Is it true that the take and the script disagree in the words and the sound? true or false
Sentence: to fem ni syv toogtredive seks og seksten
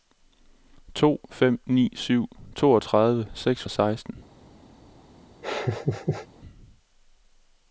true